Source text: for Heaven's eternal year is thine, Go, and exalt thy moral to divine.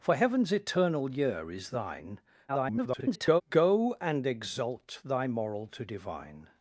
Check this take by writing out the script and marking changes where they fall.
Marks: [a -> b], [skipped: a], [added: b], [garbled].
for Heaven's eternal year is thine, [garbled] Go, and exalt thy moral to divine.